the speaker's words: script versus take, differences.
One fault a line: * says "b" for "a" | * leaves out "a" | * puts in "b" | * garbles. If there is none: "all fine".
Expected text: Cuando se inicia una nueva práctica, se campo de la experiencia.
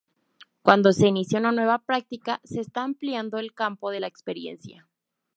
* puts in "está ampliando el"